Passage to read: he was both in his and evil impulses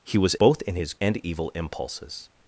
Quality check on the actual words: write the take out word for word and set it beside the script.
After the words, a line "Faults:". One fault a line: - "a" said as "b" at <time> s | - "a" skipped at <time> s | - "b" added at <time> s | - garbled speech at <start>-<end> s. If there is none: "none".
he was both in his and evil impulses
Faults:
none